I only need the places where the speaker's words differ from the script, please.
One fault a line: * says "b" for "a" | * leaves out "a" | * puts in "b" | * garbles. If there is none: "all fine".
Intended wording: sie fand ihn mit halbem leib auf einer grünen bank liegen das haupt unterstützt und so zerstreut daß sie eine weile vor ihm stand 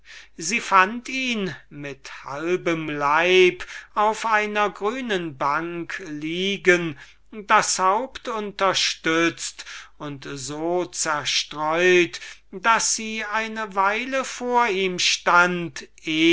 all fine